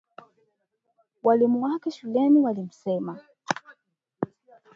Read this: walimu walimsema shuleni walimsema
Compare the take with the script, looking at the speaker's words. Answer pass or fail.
fail